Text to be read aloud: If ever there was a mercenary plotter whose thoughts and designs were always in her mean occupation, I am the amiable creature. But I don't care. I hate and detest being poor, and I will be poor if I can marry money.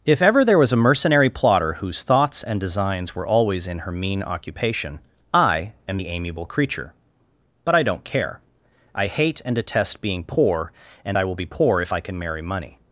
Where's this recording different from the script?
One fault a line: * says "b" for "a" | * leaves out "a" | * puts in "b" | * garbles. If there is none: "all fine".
all fine